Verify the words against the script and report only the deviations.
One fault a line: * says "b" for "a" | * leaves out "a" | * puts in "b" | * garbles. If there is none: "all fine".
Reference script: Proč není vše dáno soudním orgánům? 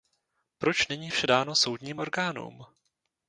all fine